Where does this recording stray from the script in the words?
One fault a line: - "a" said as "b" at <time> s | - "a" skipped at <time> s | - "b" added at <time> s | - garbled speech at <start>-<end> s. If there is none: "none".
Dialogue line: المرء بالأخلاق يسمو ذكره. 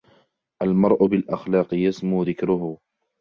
none